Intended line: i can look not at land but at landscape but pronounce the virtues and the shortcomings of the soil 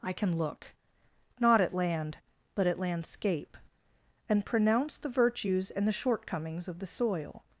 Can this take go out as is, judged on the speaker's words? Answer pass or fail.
fail